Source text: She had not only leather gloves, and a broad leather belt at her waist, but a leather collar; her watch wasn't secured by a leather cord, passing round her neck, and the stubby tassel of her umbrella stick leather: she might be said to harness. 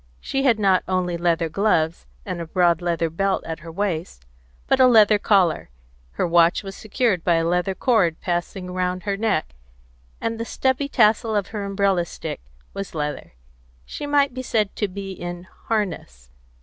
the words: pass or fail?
fail